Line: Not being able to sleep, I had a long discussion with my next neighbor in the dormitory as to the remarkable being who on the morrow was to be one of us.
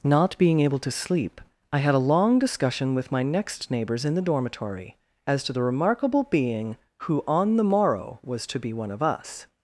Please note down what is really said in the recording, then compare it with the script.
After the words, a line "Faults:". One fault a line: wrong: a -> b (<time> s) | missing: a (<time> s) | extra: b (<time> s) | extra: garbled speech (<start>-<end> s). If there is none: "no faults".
Not being able to sleep, I had a long discussion with my next neighbors in the dormitory as to the remarkable being who on the morrow was to be one of us.
Faults:
wrong: neighbor -> neighbors (3.7 s)